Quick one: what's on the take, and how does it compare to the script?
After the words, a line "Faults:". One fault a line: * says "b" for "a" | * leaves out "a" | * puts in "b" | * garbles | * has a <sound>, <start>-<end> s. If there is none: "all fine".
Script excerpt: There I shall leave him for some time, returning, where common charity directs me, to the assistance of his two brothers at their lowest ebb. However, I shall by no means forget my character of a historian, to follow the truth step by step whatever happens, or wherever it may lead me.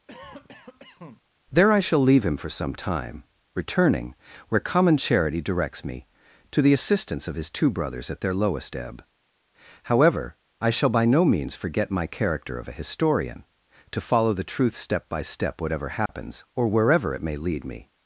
There I shall leave him for some time, returning, where common charity directs me, to the assistance of his two brothers at their lowest ebb. However, I shall by no means forget my character of a historian, to follow the truth step by step whatever happens, or wherever it may lead me.
Faults:
* has a cough, 0.1-1.2 s
* has a dropout, 16.1-16.1 s